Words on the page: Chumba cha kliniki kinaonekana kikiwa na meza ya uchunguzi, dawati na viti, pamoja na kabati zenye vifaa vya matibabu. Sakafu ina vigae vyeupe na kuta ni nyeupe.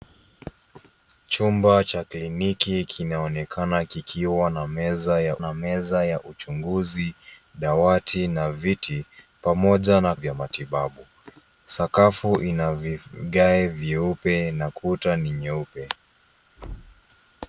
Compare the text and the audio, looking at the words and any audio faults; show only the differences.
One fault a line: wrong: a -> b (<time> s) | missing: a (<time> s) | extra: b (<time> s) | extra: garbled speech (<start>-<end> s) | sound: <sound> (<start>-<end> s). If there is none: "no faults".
extra: na meza ya (5.4 s)
missing: kabati zenye vifaa (10.1 s)
sound: thud (16.6-17.0 s)